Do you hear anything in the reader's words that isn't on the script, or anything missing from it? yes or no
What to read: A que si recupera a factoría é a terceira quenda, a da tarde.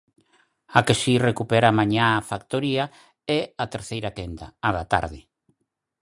yes